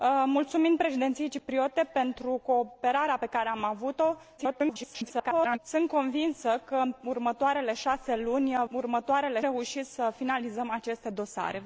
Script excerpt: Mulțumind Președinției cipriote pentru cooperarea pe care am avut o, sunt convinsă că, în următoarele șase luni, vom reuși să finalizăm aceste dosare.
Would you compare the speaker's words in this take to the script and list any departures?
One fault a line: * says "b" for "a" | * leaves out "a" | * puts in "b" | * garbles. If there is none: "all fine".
* garbles
* says "următoarele" for "vom"